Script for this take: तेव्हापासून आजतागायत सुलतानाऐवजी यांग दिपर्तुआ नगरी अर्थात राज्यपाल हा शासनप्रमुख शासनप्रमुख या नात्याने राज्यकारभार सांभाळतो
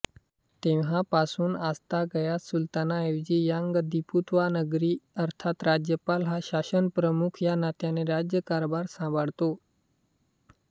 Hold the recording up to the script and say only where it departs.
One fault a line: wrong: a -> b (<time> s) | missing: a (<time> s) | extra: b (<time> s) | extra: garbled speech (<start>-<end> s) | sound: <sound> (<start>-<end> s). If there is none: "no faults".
missing: शासनप्रमुख (7.4 s)